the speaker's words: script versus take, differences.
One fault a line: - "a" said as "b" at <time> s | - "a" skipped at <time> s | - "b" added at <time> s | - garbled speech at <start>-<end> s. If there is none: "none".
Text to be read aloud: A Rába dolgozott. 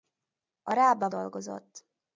none